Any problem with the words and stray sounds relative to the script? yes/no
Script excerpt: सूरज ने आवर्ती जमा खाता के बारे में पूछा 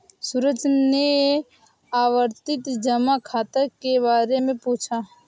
no